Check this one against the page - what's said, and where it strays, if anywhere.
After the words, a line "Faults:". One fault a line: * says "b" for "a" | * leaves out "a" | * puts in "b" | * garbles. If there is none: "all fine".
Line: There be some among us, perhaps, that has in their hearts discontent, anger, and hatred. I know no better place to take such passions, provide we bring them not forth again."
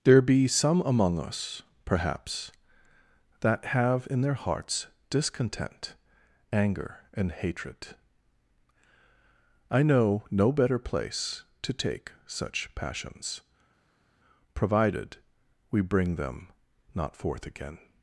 There be some among us, perhaps, that have in their hearts discontent, anger, and hatred. I know no better place to take such passions, provided we bring them not forth again."
Faults:
* says "have" for "has"
* says "provided" for "provide"